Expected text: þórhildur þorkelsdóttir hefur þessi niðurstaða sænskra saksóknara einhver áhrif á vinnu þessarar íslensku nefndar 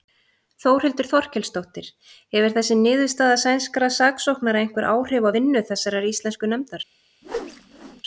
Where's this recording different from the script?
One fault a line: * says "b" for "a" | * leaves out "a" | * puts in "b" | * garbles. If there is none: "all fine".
all fine